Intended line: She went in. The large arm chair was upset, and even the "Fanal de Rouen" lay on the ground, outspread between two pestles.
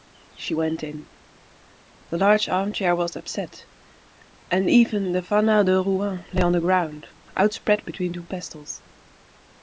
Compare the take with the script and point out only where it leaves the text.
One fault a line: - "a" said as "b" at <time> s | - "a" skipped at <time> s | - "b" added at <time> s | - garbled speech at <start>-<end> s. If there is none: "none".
none